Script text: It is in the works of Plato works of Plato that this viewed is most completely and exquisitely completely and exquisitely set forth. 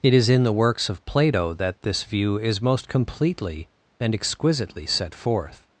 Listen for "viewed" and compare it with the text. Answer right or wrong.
wrong